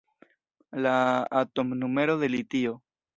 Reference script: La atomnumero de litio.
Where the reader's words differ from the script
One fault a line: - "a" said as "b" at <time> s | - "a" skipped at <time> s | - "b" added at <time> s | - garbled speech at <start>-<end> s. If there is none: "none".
none